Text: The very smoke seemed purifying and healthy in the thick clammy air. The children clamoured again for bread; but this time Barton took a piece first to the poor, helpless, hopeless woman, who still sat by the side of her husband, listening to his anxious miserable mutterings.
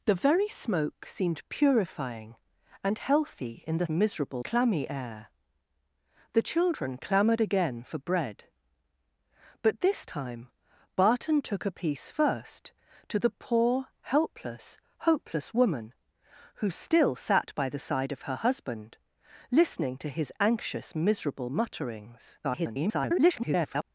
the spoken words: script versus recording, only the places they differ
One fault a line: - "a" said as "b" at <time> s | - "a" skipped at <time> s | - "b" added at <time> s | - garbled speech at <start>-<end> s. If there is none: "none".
- "thick" said as "miserable" at 3.9 s
- garbled speech at 22.4-23.8 s